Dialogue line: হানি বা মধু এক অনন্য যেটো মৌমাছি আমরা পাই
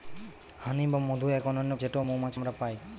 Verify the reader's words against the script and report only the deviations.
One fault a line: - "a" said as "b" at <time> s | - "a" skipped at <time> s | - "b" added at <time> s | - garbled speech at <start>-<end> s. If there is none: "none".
none